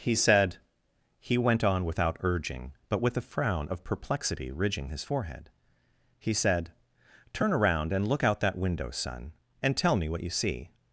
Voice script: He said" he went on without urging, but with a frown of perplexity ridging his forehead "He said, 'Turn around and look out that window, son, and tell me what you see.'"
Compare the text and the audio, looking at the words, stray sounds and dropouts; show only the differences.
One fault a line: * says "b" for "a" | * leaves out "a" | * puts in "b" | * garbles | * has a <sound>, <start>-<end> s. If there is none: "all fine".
all fine